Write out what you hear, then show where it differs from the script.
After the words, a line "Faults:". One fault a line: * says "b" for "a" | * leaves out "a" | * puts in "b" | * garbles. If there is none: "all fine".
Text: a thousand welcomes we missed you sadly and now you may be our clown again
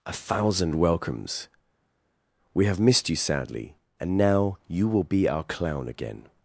a thousand welcomes we have missed you sadly and now you will be our clown again
Faults:
* puts in "have"
* says "will" for "may"